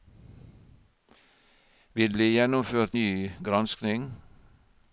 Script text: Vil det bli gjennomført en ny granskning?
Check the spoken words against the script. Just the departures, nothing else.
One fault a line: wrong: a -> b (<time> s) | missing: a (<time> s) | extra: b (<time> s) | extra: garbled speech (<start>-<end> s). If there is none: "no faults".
missing: det (2.1 s)
missing: en (3.0 s)